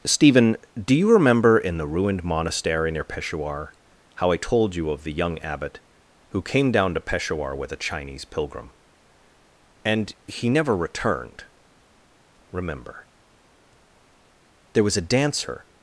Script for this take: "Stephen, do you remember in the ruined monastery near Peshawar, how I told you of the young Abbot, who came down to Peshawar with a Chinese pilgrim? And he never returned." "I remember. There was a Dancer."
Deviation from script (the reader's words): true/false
true